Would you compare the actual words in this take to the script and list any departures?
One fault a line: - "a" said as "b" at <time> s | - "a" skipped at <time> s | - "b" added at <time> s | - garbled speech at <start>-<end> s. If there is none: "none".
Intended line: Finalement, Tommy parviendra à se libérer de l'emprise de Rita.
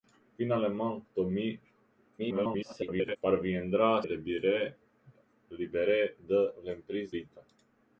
- garbled speech at 2.2-3.2 s
- "se" skipped at 4.0 s
- "de" skipped at 7.2 s